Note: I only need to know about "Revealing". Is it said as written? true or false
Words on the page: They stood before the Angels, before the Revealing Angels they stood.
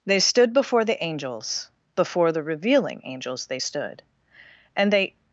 true